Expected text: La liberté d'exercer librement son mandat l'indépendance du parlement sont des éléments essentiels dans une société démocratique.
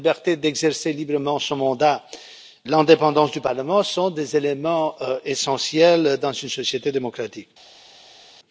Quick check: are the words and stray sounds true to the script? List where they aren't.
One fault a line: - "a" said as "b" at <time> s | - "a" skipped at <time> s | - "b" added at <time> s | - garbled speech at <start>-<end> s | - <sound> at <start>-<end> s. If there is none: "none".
none